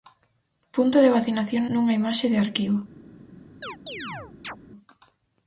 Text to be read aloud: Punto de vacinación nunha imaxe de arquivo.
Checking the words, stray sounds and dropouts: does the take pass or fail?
fail